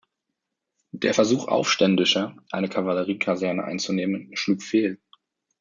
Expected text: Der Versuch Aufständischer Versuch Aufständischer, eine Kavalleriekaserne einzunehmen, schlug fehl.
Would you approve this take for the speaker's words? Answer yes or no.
no